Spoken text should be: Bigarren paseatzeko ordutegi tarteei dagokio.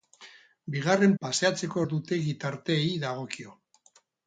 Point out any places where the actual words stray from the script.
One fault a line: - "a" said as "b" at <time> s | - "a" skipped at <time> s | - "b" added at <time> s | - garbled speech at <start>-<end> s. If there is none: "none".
none